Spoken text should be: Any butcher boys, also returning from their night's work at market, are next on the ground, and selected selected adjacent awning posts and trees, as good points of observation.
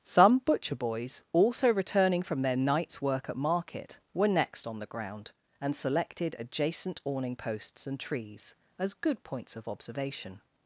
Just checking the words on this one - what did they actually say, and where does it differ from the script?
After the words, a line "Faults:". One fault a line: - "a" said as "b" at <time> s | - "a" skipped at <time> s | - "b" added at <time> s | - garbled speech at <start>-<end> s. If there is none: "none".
Some butcher boys, also returning from their night's work at market, were next on the ground, and selected adjacent awning posts and trees, as good points of observation.
Faults:
- "Any" said as "Some" at 0.0 s
- "are" said as "were" at 4.2 s
- "selected" skipped at 6.4 s